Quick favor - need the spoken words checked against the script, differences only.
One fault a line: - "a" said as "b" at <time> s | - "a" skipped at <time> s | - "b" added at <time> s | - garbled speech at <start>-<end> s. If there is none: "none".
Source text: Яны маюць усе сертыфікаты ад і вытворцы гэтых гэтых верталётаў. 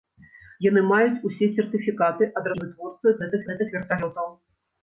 none